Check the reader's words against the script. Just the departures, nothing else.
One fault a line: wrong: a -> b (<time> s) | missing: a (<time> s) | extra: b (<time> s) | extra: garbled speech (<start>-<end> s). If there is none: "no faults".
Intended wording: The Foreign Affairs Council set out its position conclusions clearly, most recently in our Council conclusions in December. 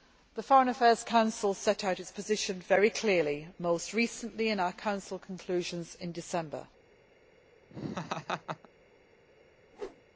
wrong: conclusions -> very (2.6 s)